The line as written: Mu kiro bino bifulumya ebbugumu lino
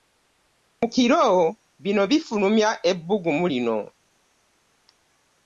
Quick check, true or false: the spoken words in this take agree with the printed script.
true